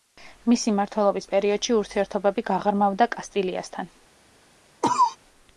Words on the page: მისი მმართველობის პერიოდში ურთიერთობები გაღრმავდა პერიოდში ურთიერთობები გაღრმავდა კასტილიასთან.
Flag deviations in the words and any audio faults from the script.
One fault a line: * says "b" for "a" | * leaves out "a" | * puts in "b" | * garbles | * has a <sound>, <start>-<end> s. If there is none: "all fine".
* leaves out "პერიოდში ურთიერთობები გაღრმავდა"
* has a cough, 4.8-5.2 s